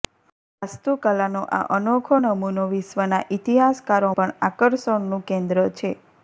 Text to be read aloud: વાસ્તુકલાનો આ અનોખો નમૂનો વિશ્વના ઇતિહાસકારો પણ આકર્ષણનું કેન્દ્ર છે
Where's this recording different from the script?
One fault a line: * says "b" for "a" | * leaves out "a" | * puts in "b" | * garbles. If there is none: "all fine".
all fine